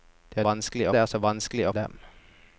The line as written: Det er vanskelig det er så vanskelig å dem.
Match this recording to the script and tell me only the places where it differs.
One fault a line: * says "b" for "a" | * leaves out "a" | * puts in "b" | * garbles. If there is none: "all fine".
all fine